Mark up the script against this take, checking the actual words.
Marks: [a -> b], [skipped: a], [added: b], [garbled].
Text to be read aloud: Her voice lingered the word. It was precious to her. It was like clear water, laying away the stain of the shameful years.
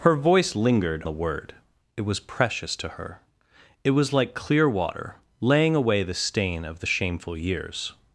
Her voice lingered the word. It was precious to her. It was like clear water, laying away the stain of the shameful years.